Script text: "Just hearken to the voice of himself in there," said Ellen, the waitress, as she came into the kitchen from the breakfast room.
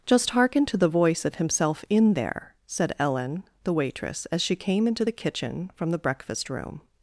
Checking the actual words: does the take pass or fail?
pass